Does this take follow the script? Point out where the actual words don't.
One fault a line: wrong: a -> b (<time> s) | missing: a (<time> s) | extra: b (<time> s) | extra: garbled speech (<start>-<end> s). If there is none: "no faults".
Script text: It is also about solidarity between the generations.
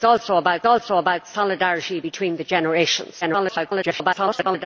extra: is also about (0.7 s)
extra: garbled speech (3.2-4.7 s)